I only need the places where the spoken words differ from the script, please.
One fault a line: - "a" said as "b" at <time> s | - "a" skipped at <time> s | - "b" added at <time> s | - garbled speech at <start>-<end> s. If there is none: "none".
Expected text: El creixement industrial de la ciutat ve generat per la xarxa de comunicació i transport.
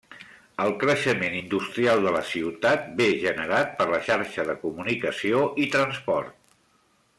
none